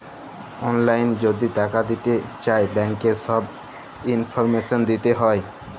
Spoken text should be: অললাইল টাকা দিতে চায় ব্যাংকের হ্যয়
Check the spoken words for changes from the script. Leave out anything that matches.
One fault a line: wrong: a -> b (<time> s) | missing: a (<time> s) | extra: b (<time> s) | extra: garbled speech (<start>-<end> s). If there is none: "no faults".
extra: যদি (1.2 s)
extra: ছব ইলফরমেশল দিতে (3.2 s)